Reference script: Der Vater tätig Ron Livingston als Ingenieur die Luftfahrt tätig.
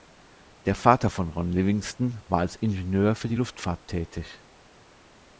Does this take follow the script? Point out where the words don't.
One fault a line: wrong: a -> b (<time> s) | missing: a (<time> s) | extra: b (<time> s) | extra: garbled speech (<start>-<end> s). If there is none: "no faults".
wrong: tätig -> von (1.1 s)
extra: war (2.3 s)
extra: für (3.1 s)